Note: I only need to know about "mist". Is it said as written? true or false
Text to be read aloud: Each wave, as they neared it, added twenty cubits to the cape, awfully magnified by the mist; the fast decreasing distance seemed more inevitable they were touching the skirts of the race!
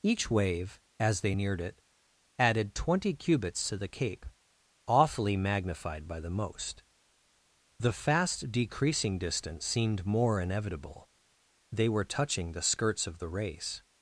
false